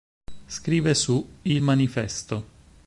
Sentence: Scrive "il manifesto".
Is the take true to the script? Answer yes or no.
no